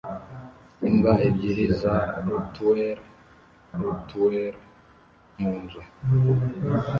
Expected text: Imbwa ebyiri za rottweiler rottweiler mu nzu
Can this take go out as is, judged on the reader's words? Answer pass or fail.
pass